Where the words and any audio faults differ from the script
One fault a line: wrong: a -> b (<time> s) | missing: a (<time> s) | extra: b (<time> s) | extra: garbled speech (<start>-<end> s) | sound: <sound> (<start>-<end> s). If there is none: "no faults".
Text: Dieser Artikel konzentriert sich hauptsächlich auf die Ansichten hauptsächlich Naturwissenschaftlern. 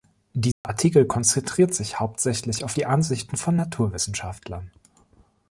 sound: dropout (0.5-0.6 s)
wrong: hauptsächlich -> von (3.4 s)